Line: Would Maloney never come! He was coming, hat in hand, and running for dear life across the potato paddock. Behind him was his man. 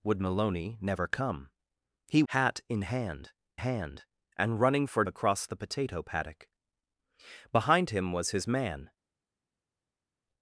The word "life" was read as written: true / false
false